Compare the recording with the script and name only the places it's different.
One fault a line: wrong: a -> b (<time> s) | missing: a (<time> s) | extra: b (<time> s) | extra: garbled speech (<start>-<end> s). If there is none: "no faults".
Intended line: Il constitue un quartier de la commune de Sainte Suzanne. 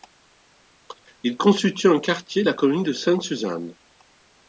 no faults